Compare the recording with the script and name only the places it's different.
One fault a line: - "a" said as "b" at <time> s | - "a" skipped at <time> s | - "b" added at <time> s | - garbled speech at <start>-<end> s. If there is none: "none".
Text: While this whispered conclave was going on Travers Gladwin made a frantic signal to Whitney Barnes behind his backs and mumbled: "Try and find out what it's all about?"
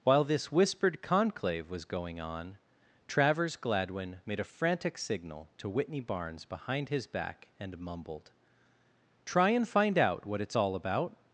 - "backs" said as "back" at 7.0 s